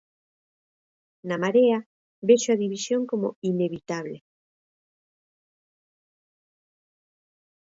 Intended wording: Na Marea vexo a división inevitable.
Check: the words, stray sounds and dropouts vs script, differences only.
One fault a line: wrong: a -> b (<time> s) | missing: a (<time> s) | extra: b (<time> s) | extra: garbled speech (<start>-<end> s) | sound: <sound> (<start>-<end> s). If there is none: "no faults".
extra: como (3.1 s)